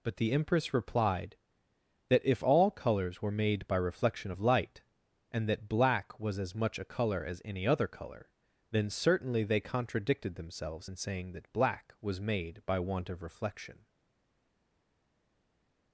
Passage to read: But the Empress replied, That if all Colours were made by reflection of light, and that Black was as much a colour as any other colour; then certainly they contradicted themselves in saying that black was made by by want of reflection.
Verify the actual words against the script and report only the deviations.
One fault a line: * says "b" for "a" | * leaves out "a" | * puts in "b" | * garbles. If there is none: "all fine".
* leaves out "by"